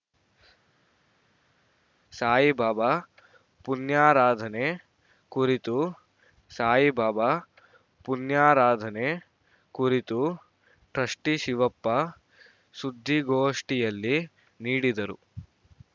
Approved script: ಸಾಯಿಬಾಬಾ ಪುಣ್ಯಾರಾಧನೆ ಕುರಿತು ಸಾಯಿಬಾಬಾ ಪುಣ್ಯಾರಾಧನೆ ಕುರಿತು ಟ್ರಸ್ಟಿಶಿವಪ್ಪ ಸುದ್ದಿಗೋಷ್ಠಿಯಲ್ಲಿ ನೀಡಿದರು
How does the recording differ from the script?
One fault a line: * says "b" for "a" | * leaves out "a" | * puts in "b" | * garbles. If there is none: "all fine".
all fine